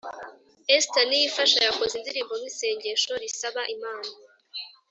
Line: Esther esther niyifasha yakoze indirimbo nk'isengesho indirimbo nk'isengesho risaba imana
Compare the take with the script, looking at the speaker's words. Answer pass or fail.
fail